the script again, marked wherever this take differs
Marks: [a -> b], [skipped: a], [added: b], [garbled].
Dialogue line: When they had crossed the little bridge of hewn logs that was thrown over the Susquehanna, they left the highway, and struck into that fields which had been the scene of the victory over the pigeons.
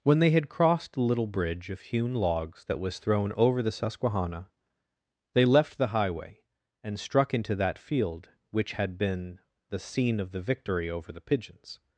When they had crossed the little bridge of hewn logs that was thrown over the Susquehanna, they left the highway, and struck into that [fields -> field] which had been the scene of the victory over the pigeons.